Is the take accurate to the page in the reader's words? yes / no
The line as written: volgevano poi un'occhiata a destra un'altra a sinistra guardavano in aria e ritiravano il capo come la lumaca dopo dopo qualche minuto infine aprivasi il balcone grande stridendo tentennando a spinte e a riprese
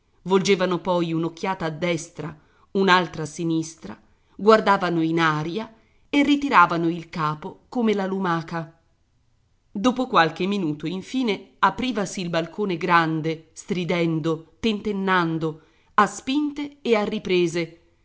no